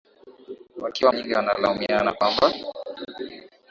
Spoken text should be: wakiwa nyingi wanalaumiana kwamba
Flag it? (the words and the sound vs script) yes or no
no